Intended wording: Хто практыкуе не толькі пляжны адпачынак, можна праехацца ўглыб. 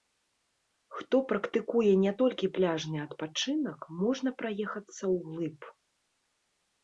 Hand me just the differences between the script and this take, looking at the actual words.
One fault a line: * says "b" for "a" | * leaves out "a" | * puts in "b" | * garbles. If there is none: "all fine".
all fine